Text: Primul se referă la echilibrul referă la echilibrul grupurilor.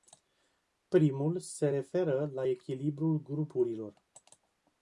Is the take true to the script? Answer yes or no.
no